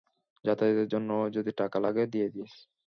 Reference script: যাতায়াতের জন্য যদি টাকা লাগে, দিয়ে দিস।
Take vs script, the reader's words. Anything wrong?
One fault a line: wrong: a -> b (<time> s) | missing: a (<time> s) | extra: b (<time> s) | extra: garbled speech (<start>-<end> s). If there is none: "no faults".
no faults